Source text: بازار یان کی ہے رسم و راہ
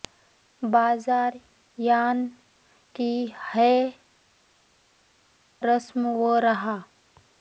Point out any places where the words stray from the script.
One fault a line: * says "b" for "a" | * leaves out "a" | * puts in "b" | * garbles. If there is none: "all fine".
all fine